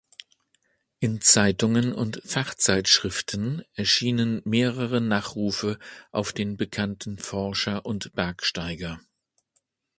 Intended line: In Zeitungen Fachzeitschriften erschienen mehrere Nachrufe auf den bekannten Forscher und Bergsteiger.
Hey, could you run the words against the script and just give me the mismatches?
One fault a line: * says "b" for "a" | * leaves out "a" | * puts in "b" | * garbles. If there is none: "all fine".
* puts in "und"